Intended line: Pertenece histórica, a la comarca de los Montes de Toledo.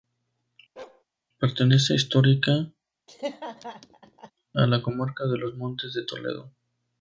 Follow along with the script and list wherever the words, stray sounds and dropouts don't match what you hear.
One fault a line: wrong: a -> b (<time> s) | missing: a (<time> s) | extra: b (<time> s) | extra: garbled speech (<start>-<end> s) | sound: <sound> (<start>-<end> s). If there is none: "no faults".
sound: bark (0.8-1.0 s)
sound: laugh (3.1-4.3 s)